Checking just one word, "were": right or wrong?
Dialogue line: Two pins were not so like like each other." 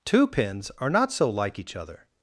wrong